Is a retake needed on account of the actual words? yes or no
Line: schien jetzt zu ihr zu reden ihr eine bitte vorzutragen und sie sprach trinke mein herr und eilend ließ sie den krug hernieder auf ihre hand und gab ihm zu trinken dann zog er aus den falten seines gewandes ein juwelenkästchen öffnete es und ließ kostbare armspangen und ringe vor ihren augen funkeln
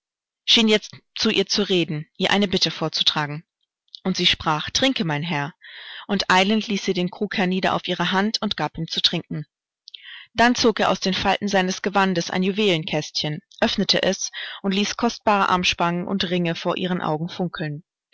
no